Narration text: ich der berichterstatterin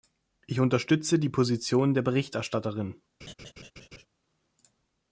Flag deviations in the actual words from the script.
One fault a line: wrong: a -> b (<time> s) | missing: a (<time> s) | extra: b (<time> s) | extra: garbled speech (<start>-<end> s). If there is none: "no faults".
extra: unterstütze die position (0.6 s)